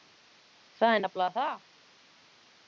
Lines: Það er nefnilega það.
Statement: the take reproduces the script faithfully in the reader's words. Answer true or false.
true